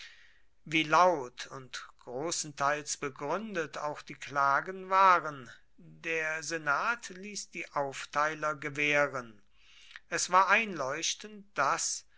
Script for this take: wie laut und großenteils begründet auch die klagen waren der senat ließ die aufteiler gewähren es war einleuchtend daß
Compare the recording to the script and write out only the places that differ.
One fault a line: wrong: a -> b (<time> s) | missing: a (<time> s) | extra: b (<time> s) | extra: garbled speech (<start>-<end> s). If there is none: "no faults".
no faults